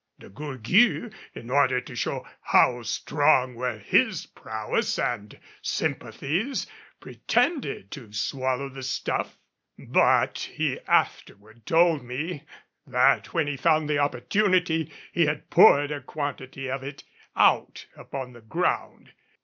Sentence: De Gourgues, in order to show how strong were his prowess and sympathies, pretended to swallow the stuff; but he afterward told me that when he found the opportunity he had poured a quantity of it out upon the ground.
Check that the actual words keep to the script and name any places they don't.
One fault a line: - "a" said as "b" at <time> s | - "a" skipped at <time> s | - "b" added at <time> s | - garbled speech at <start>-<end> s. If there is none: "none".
none